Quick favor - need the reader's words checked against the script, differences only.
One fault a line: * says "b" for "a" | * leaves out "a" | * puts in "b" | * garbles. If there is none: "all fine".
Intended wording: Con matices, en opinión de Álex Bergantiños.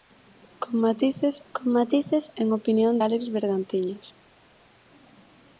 * puts in "con matices"
* leaves out "de"